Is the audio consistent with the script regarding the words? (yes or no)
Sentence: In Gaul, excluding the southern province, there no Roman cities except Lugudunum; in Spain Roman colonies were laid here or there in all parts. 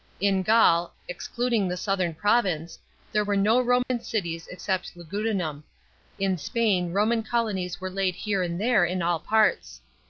no